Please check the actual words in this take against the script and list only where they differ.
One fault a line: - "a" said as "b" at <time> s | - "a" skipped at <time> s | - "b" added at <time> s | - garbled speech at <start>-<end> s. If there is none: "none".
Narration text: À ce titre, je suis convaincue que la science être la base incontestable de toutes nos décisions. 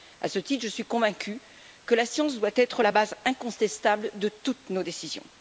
- "doit" added at 2.4 s